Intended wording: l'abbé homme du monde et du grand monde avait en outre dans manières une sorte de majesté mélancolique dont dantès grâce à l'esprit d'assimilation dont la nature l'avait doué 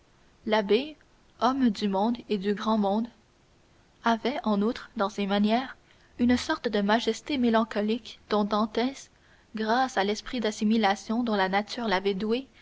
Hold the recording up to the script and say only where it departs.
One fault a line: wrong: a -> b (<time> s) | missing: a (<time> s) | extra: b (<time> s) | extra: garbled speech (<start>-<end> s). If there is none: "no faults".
extra: ses (5.1 s)